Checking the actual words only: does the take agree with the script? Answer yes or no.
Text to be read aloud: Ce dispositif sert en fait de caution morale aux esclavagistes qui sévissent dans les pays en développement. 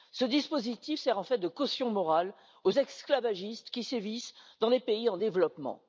yes